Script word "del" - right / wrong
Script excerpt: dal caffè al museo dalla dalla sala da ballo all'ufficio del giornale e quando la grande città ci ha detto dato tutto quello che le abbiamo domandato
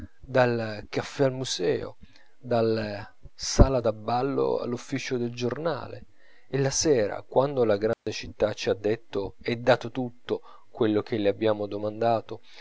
right